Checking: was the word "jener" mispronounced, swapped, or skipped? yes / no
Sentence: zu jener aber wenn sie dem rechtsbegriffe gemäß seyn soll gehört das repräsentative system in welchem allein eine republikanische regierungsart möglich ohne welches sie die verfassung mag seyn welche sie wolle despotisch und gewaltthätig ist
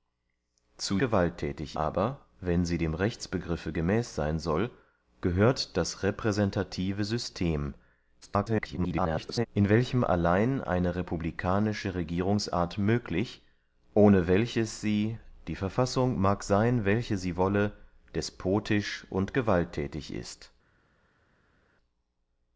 yes